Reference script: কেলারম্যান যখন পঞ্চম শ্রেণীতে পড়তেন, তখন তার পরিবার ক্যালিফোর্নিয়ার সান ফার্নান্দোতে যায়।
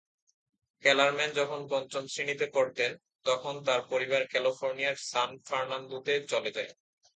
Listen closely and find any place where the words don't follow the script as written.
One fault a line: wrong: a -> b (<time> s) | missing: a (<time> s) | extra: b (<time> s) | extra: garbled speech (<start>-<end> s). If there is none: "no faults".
extra: চলে (6.3 s)